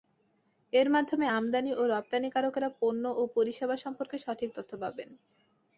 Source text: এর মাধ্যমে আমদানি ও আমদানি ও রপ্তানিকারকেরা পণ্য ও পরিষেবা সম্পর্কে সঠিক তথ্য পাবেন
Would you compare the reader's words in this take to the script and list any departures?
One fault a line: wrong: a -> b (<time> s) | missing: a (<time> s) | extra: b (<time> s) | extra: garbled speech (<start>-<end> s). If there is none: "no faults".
missing: আমদানি ও (1.9 s)